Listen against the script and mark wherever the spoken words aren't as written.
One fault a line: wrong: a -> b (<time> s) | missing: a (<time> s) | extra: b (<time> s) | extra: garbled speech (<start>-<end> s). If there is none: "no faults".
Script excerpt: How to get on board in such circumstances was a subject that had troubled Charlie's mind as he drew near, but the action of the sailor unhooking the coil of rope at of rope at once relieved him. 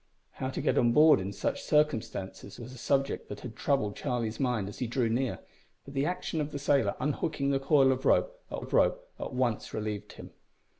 no faults